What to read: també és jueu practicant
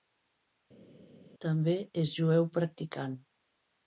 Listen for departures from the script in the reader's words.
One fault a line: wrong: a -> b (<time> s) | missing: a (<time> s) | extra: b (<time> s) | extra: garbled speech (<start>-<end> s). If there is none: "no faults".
no faults